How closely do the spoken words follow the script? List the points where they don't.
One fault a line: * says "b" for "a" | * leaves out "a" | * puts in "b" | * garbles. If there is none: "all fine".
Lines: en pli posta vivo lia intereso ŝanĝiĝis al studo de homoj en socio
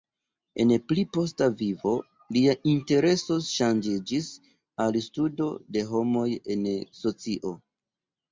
all fine